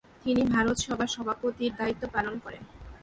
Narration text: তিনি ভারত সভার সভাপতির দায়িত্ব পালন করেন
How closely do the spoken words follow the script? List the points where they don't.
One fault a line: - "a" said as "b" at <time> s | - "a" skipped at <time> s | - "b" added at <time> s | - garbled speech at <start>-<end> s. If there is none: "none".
none